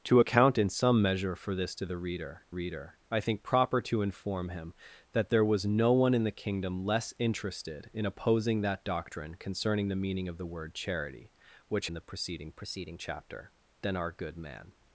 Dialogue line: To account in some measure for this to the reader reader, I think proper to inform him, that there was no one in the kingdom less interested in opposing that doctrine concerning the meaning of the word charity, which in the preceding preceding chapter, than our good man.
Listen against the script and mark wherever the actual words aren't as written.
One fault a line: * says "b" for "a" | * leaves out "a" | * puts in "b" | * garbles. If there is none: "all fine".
all fine